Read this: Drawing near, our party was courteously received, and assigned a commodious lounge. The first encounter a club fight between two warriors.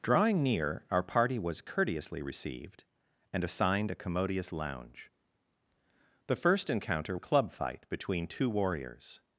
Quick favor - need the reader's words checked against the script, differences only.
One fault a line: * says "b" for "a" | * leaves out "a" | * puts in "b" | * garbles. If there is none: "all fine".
all fine